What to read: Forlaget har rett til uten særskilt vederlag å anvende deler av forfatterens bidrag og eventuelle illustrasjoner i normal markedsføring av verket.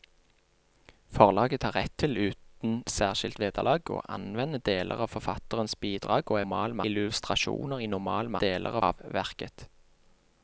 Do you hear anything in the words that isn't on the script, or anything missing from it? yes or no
yes